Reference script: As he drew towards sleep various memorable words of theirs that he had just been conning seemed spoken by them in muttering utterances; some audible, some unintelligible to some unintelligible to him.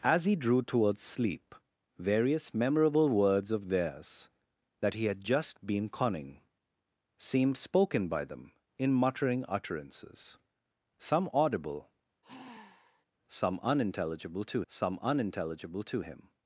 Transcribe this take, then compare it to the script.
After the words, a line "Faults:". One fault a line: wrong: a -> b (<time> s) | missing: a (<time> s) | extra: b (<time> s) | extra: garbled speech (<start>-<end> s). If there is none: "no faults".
As he drew towards sleep various memorable words of theirs that he had just been conning seemed spoken by them in muttering utterances; some audible, some unintelligible to some unintelligible to him.
Faults:
no faults